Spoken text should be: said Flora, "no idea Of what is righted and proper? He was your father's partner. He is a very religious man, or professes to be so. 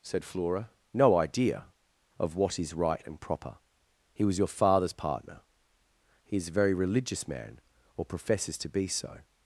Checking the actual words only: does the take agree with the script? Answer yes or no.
no